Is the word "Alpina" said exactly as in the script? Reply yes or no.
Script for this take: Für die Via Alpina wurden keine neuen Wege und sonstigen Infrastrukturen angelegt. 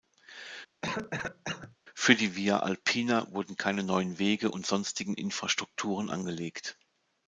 yes